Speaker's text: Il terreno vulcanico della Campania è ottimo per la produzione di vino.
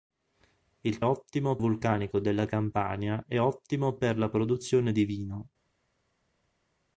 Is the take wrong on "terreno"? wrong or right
wrong